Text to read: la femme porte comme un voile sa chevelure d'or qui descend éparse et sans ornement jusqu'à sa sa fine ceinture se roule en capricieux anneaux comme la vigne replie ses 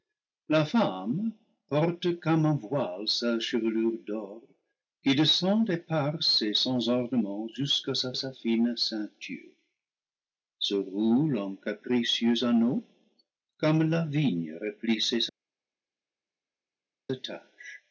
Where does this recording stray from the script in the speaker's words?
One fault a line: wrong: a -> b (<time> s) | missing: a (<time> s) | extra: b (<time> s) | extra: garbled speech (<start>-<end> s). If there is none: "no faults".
no faults